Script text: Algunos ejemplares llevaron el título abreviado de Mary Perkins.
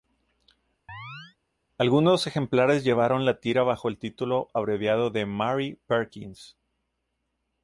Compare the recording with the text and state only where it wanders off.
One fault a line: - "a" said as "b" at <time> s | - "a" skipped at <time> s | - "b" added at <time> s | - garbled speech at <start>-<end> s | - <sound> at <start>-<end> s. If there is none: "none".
- chirp at 0.9-1.4 s
- "la tira bajo" added at 3.3 s